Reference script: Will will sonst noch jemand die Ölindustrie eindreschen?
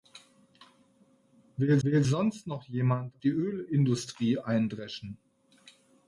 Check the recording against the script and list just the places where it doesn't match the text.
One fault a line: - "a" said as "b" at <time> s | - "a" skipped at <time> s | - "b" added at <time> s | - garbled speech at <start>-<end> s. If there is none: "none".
none